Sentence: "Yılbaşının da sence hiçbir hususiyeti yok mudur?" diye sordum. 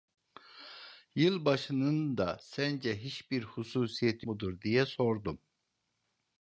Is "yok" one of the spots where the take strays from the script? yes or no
yes